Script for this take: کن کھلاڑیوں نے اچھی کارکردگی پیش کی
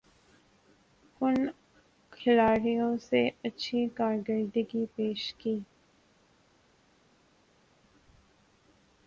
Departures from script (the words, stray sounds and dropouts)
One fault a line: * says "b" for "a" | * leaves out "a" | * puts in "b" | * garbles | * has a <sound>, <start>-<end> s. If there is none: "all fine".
all fine